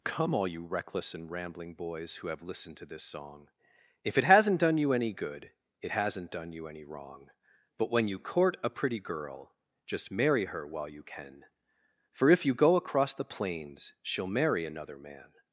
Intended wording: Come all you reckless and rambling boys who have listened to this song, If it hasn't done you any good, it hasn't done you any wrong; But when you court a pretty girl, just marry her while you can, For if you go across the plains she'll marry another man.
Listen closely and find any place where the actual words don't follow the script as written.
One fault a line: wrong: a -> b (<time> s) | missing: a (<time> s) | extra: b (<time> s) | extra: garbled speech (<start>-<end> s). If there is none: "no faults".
no faults